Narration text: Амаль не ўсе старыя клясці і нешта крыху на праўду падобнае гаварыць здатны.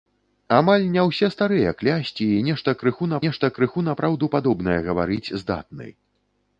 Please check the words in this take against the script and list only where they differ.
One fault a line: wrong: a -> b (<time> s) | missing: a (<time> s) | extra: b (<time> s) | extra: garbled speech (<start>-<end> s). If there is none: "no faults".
extra: нешта крыху на (3.3 s)